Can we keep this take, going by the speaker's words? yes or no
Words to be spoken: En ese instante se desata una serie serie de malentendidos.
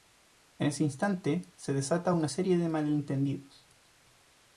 no